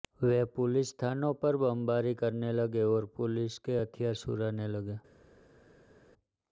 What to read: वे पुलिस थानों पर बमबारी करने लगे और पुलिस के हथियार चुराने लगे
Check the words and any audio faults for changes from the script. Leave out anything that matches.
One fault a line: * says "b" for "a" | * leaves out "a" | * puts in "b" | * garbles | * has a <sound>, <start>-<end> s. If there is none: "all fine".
all fine